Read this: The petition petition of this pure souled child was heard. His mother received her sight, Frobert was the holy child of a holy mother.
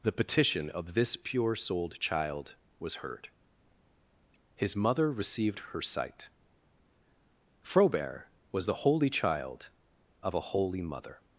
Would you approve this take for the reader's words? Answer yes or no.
no